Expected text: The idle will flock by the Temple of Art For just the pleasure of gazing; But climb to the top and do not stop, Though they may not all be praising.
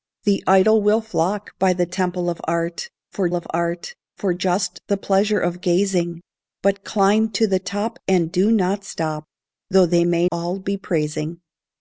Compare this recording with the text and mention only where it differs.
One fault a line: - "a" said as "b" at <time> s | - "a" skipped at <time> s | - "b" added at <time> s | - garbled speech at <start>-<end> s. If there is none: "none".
- "of Art For" added at 3.3 s
- "not" skipped at 10.3 s